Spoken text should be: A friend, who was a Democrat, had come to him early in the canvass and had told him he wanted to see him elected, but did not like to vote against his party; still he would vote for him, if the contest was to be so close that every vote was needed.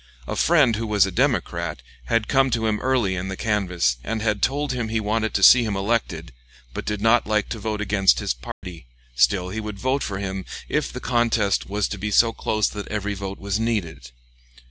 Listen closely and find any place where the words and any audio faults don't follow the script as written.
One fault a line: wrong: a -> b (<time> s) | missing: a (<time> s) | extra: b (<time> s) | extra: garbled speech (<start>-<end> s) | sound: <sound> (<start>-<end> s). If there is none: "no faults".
sound: dropout (8.5-8.6 s)